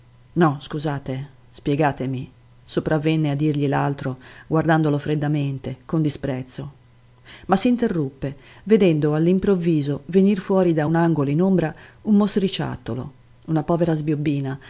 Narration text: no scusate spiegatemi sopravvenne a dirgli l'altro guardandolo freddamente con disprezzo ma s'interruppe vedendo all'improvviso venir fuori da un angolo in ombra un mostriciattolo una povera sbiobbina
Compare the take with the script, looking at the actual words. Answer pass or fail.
pass